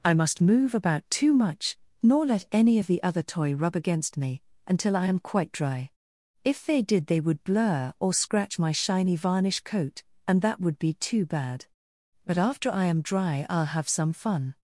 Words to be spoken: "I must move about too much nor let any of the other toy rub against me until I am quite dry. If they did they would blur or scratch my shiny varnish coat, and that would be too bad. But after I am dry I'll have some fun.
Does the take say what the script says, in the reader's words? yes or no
yes